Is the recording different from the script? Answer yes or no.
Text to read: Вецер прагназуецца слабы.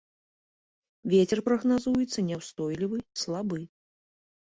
yes